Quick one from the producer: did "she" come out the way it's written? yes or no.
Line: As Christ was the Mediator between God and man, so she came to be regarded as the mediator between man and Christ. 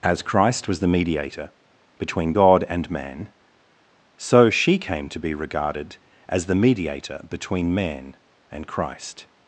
yes